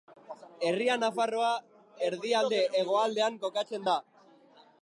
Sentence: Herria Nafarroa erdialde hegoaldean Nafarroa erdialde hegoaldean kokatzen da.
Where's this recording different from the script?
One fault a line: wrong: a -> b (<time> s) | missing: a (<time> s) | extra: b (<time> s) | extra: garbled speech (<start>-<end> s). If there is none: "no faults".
missing: Nafarroa erdialde hegoaldean (3.4 s)